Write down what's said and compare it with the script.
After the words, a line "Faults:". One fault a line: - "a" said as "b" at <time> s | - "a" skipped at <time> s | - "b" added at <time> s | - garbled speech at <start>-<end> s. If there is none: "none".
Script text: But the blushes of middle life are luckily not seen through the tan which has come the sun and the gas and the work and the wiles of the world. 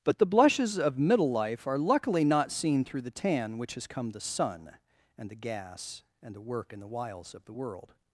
But the blushes of middle life are luckily not seen through the tan which has come the sun and the gas and the work and the wiles of the world.
Faults:
none